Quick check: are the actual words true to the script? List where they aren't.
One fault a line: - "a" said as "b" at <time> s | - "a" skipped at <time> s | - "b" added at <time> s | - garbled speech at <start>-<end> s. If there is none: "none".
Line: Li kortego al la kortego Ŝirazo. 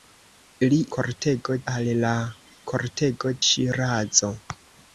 none